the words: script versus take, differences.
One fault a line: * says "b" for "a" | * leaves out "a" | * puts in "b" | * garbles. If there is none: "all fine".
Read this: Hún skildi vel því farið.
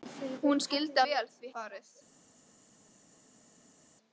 all fine